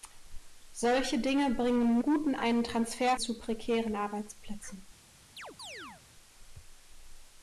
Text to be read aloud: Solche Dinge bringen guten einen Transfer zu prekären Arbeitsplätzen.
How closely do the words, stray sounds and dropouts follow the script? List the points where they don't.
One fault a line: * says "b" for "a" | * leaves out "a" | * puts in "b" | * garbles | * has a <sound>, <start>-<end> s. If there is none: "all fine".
* has a chirp, 5.4-6.0 s